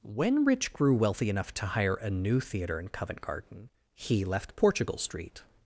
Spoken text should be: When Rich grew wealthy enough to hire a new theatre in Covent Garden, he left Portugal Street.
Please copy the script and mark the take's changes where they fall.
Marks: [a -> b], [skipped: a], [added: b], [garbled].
When Rich grew wealthy enough to hire a new theatre in Covent Garden, he left Portugal Street.